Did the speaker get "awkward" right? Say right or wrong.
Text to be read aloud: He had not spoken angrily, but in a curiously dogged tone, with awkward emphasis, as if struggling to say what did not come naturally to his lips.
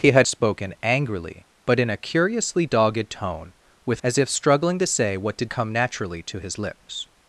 wrong